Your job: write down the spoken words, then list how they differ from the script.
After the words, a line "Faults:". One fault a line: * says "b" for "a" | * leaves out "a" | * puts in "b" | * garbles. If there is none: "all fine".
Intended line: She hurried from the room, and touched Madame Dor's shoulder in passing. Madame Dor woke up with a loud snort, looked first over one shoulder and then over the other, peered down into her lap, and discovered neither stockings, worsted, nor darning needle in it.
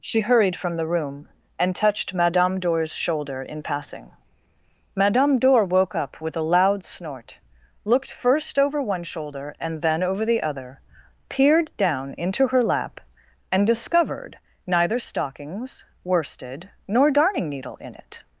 She hurried from the room, and touched Madame Dor's shoulder in passing. Madame Dor woke up with a loud snort, looked first over one shoulder and then over the other, peered down into her lap, and discovered neither stockings, worsted, nor darning needle in it.
Faults:
all fine